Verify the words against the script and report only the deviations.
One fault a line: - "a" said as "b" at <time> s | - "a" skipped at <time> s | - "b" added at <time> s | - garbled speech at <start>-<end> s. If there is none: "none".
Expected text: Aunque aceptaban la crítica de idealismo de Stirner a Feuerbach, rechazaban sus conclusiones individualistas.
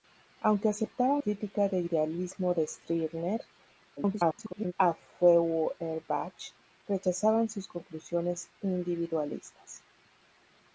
- "la" skipped at 1.2 s
- garbled speech at 4.0-4.7 s